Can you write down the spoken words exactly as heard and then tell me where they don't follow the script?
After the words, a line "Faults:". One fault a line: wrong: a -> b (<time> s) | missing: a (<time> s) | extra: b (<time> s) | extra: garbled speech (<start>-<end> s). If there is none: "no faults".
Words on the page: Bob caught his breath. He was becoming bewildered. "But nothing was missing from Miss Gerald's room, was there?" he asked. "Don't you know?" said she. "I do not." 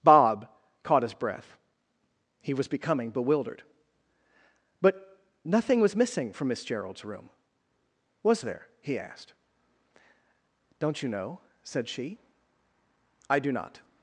Bob caught his breath. He was becoming bewildered. "But nothing was missing from Miss Gerald's room, was there?" he asked. "Don't you know?" said she. "I do not."
Faults:
no faults